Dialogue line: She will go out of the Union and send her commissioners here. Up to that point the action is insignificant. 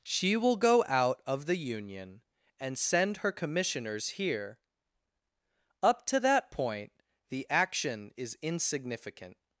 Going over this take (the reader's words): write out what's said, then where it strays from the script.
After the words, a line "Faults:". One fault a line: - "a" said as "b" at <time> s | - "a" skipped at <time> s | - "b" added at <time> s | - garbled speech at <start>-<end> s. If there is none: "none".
She will go out of the Union and send her commissioners here. Up to that point the action is insignificant.
Faults:
none